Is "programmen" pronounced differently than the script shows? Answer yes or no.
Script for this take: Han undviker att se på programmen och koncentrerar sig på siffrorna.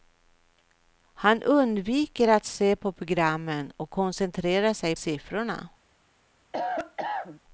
no